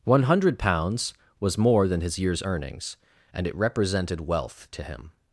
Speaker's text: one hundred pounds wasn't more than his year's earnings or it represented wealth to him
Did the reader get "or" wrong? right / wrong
wrong